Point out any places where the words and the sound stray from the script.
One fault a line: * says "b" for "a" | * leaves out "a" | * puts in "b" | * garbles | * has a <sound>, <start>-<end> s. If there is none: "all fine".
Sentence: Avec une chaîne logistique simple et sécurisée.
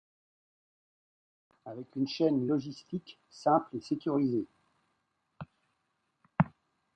all fine